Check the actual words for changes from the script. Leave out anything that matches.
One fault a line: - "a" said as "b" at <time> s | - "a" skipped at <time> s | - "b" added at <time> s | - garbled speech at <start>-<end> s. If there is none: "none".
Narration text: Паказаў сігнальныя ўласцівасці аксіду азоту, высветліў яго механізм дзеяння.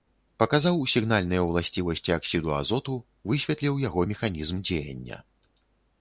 none